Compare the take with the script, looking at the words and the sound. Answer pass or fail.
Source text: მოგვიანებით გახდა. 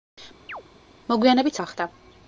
fail